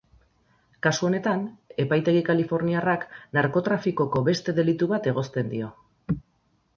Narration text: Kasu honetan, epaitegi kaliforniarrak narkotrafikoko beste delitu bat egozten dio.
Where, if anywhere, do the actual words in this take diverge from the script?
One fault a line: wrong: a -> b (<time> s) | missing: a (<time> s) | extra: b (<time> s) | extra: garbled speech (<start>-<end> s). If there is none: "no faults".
no faults